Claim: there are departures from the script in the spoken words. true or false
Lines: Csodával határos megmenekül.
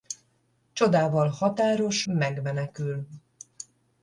false